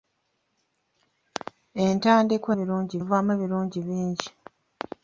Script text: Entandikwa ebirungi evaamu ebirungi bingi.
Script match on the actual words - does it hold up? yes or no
yes